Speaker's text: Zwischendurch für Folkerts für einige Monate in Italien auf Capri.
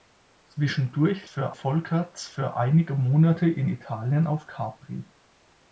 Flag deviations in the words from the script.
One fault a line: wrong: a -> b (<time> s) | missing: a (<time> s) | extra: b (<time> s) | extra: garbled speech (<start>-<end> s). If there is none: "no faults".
no faults